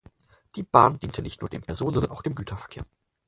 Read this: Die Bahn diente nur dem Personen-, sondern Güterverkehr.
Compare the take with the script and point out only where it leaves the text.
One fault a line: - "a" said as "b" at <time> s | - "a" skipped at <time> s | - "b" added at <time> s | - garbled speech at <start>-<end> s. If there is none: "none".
- "nicht" added at 1.2 s
- "auch dem" added at 2.1 s